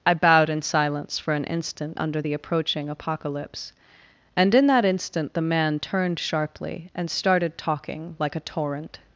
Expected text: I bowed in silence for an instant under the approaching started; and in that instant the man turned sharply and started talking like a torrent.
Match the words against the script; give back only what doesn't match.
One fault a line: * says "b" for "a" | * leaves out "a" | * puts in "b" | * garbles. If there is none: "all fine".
* says "apocalypse" for "started"